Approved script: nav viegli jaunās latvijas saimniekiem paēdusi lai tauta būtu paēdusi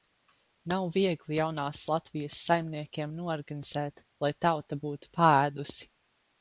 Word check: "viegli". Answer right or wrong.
right